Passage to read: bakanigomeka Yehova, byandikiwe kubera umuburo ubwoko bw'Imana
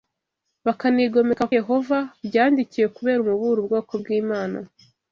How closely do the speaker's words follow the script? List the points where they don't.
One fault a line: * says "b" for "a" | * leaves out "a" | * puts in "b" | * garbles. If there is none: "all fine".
all fine